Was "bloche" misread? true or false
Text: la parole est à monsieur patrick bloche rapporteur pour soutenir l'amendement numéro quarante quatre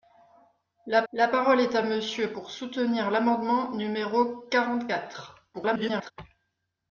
true